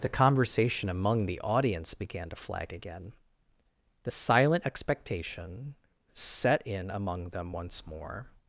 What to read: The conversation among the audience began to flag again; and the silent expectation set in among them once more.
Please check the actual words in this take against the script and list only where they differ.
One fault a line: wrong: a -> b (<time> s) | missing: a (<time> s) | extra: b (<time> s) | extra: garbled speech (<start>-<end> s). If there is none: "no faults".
missing: and (3.1 s)